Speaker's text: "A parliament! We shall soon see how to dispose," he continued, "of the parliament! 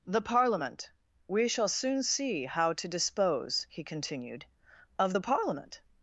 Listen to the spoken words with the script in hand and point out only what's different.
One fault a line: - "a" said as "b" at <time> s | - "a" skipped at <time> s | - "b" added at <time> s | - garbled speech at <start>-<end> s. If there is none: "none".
- "A" said as "The" at 0.1 s